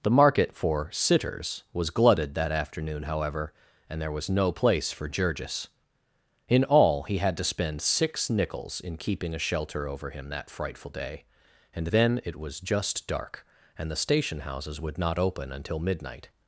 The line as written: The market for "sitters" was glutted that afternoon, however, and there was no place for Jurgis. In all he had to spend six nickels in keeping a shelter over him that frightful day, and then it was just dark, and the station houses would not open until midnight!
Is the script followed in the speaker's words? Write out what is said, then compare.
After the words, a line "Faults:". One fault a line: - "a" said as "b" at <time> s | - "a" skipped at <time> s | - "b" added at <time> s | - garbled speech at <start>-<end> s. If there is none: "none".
The market for "sitters" was glutted that afternoon, however, and there was no place for Jurgis. In all he had to spend six nickels in keeping a shelter over him that frightful day, and then it was just dark, and the station houses would not open until midnight!
Faults:
none